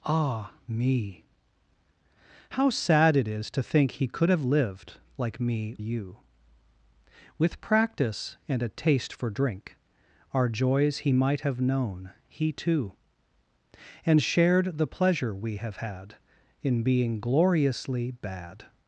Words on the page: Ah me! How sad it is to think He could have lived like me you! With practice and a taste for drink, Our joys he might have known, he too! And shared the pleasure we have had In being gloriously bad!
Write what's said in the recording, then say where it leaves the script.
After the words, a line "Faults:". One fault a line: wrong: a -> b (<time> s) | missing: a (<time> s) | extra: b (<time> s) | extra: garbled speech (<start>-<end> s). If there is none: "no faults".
Ah me! How sad it is to think He could have lived like me you! With practice and a taste for drink, Our joys he might have known, he too! And shared the pleasure we have had In being gloriously bad!
Faults:
no faults